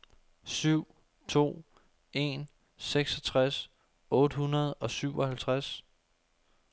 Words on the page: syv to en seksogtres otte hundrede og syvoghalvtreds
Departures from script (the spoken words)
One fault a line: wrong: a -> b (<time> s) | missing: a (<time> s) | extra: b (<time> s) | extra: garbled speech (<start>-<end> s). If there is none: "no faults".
no faults